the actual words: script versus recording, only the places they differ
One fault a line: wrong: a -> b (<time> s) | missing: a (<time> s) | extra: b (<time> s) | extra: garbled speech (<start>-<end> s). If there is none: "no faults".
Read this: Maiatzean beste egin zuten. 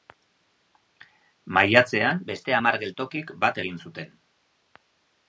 extra: hamar geltokik bat (2.6 s)